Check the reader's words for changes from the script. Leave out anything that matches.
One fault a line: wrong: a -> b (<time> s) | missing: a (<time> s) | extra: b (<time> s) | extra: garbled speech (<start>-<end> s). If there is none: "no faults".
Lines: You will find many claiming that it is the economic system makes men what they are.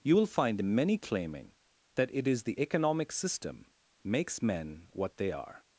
no faults